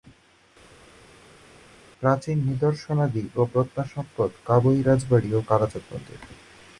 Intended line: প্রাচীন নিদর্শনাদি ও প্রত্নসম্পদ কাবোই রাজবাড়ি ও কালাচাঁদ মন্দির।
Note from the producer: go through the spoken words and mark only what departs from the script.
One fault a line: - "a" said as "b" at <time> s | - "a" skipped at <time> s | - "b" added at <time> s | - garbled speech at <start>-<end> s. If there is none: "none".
none